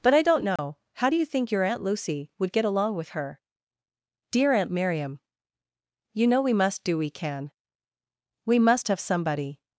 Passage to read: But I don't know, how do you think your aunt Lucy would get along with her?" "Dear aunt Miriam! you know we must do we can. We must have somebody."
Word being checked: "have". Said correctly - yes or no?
yes